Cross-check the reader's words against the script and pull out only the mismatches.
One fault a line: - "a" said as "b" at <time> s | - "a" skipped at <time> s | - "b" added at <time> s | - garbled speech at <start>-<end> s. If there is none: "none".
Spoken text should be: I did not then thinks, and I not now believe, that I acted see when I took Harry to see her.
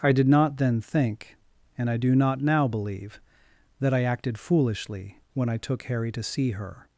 - "thinks" said as "think" at 0.8 s
- "do" added at 2.0 s
- "see" said as "foolishly" at 4.4 s